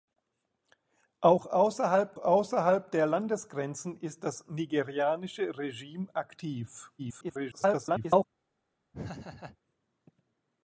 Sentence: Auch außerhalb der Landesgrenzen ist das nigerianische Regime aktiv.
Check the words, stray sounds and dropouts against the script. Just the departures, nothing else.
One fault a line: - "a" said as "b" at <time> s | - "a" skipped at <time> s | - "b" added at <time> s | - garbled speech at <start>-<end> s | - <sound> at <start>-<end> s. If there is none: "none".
- "außerhalb" added at 2.2 s
- garbled speech at 7.0-8.2 s
- laugh at 8.9-9.6 s